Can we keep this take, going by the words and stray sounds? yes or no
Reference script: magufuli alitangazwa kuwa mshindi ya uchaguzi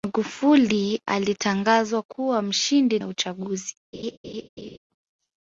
no